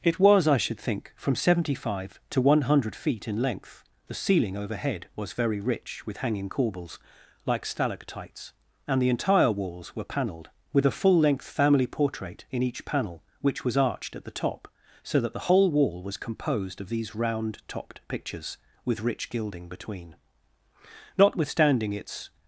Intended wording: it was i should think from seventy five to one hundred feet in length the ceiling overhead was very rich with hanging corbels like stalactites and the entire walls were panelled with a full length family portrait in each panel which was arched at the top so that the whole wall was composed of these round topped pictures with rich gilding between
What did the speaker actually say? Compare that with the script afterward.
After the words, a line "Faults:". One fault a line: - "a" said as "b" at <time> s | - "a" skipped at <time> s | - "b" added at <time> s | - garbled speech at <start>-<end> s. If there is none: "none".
it was i should think from seventy five to one hundred feet in length the ceiling overhead was very rich with hanging corbels like stalactites and the entire walls were panelled with a full length family portrait in each panel which was arched at the top so that the whole wall was composed of these round topped pictures with rich gilding between notwithstanding its
Faults:
- "notwithstanding its" added at 21.2 s